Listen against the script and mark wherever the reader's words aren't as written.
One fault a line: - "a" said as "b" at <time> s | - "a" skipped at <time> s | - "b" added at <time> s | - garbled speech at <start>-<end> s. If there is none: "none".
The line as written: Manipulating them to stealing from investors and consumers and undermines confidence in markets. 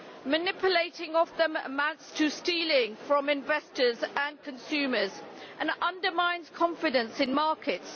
- "amounts" added at 1.6 s